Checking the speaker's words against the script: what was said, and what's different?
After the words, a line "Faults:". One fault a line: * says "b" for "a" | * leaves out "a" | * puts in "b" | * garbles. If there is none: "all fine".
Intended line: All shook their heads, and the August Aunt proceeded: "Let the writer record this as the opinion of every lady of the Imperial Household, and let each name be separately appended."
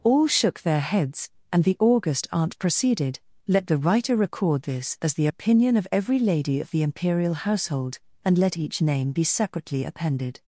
All shook their heads, and the August Aunt proceeded: "Let the writer record this as the opinion of every lady of the Imperial Household, and let each name be separately appended."
Faults:
all fine